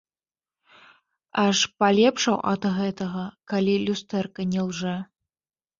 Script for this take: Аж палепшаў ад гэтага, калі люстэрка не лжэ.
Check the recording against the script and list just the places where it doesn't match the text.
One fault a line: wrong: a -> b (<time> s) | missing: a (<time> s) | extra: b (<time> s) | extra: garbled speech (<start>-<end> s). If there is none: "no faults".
no faults